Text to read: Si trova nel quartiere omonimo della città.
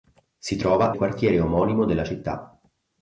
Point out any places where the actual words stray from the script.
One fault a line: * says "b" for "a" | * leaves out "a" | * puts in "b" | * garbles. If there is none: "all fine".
* leaves out "nel"